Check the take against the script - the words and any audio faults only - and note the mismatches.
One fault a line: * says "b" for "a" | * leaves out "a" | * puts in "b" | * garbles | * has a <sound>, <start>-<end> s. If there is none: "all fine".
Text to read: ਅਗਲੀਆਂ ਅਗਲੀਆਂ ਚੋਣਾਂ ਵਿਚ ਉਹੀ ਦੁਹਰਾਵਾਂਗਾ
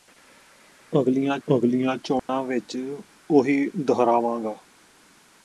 * has a dropout, 2.2-2.3 s